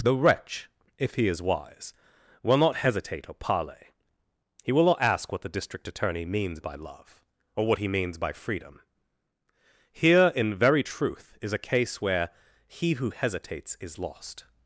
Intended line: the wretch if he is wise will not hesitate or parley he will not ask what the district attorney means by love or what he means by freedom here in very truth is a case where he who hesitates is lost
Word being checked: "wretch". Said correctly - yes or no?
yes